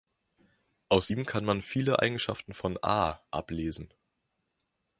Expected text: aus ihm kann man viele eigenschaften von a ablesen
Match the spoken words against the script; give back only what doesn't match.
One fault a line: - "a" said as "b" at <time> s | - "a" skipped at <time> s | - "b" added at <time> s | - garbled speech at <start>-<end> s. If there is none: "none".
none